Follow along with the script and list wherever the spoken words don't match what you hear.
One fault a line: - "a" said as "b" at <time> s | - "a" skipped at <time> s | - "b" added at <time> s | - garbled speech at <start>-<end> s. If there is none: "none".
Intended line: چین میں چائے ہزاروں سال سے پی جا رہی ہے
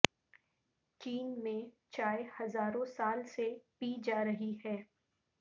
none